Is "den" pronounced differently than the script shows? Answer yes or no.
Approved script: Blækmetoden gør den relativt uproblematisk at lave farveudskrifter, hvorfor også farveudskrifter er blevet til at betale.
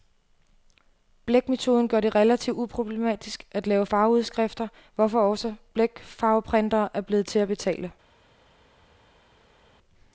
yes